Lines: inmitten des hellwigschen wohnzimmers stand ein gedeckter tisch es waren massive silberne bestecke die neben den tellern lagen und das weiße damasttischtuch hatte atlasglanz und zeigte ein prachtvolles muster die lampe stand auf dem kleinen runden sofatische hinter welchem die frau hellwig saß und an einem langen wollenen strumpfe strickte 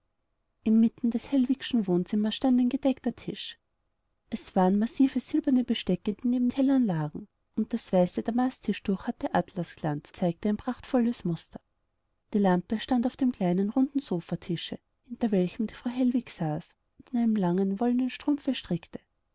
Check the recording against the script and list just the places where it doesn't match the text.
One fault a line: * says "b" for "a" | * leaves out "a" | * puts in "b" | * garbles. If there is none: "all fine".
* leaves out "den"
* leaves out "und"